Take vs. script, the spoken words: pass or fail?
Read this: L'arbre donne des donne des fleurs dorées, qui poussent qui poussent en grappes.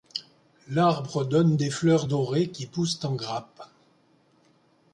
fail